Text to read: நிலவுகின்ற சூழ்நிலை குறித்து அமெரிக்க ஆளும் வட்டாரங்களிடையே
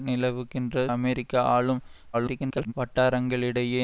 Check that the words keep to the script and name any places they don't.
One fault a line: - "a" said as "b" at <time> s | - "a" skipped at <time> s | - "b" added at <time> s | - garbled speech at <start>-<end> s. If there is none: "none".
- "சூழ்நிலை குறித்து" skipped at 0.8 s
- garbled speech at 2.1-2.7 s